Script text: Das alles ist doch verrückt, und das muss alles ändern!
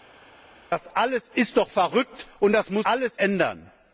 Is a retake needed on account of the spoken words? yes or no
no